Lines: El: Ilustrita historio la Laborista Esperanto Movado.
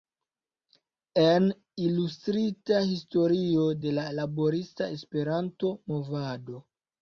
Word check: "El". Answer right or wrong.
wrong